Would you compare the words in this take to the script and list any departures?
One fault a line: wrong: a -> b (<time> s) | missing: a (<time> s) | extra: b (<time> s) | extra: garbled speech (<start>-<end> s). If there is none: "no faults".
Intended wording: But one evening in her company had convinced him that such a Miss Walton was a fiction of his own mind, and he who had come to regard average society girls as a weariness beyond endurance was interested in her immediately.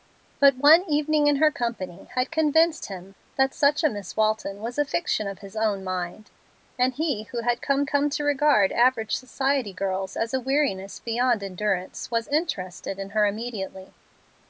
extra: come (7.9 s)